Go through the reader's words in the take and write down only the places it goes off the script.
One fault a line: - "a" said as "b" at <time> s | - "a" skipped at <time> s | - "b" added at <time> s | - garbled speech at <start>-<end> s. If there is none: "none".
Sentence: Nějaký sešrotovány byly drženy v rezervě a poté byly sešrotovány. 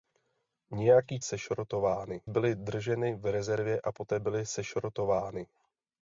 none